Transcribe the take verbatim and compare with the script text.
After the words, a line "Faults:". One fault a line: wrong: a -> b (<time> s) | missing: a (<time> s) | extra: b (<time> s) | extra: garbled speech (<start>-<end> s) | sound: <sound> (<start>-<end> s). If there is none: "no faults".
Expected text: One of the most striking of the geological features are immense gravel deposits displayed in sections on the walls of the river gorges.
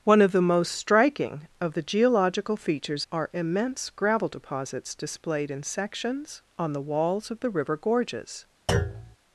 One of the most striking of the geological features are immense gravel deposits displayed in sections on the walls of the river gorges.
Faults:
sound: thud (8.7-9.2 s)